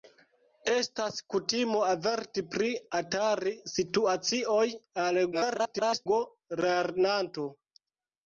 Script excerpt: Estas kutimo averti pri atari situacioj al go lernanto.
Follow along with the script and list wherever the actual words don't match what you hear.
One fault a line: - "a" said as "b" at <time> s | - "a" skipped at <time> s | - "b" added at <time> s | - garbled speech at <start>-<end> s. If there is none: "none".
- garbled speech at 5.3-6.1 s